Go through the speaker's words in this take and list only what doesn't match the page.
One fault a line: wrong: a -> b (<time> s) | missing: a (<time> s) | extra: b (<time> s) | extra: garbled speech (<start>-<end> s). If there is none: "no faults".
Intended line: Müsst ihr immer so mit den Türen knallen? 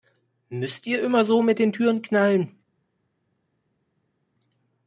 no faults